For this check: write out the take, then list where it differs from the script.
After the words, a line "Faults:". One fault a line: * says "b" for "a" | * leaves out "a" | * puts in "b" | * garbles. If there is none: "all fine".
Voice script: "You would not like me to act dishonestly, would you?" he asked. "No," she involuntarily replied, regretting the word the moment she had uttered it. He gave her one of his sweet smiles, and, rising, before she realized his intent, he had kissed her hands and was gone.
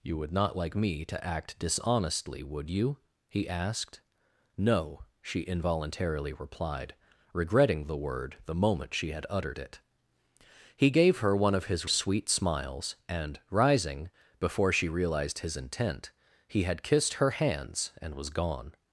"You would not like me to act dishonestly, would you?" he asked. "No," she involuntarily replied, regretting the word the moment she had uttered it. He gave her one of his sweet smiles, and, rising, before she realized his intent, he had kissed her hands and was gone.
Faults:
all fine